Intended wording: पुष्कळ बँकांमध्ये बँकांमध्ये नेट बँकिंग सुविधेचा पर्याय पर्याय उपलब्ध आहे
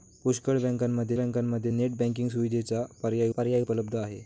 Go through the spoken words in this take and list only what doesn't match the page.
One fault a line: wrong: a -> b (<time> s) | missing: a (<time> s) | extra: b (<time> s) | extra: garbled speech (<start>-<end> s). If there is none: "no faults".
no faults